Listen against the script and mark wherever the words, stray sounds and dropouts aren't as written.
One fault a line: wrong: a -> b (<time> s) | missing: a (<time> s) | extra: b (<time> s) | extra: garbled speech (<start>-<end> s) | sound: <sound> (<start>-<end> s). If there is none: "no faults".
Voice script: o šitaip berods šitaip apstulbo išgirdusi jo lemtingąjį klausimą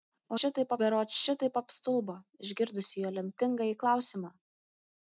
no faults